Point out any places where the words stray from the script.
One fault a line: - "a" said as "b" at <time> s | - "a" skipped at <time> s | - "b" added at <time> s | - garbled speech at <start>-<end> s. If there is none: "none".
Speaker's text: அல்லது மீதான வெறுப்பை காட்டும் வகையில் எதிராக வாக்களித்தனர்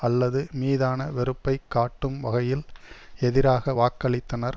none